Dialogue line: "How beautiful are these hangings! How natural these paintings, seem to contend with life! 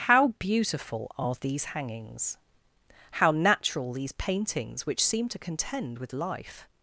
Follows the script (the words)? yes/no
no